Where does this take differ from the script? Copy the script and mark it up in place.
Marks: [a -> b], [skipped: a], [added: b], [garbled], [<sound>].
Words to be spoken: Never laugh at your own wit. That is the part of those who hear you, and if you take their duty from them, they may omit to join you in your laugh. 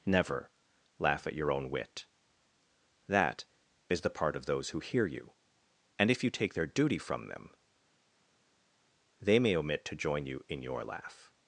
Never laugh at your own wit. That is the part of those who hear you, and if you take their duty from them, they may omit to join you in your laugh.